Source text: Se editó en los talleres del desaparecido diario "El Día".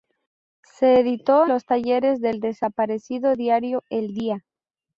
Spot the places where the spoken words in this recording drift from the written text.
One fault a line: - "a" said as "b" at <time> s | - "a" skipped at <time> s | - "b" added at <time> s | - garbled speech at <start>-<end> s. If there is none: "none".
- "en" skipped at 1.4 s